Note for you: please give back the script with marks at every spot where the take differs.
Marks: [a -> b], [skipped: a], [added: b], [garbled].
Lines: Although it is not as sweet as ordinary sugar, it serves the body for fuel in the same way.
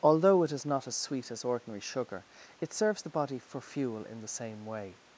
Although it is not as sweet as ordinary sugar, it serves the body for fuel in the same way.